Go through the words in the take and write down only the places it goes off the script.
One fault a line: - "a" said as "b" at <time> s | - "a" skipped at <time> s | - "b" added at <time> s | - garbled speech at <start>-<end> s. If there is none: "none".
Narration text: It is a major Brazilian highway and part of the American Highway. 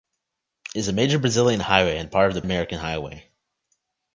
none